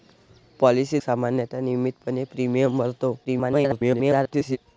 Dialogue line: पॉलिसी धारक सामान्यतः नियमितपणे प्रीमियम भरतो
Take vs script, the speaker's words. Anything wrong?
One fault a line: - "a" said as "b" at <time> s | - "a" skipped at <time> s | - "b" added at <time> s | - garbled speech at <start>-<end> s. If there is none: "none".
- "धारक" skipped at 1.0 s
- garbled speech at 3.2-4.6 s